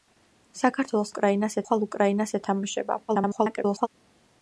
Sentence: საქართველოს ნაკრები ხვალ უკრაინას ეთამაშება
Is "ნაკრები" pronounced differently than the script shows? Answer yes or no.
yes